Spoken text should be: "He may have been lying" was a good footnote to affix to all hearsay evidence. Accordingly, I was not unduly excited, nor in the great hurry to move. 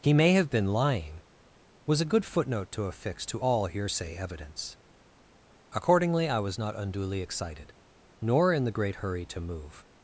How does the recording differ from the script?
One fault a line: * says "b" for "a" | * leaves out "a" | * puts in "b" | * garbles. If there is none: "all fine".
all fine